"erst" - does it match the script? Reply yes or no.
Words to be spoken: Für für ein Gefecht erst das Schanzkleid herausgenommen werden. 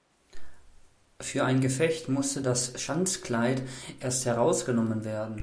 no